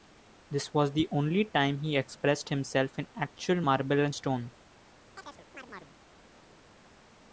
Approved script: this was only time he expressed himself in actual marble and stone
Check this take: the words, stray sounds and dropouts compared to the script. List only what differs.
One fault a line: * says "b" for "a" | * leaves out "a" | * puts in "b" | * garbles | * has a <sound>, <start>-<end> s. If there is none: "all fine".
* puts in "the"
* has a chirp, 5.2-6.0 s